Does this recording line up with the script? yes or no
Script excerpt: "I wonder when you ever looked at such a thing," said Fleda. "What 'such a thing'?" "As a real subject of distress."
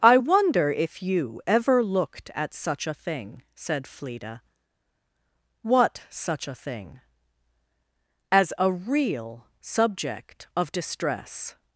no